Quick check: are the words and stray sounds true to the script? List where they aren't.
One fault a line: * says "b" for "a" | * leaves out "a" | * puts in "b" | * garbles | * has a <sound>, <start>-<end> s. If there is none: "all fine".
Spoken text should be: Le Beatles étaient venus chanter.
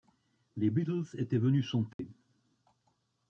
* says "Les" for "Le"
* has a dropout, 1.9-2.0 s